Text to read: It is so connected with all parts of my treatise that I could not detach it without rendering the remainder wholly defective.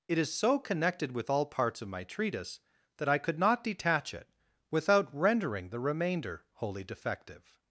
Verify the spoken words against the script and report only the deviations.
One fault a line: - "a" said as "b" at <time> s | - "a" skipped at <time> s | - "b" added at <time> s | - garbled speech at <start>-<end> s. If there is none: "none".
none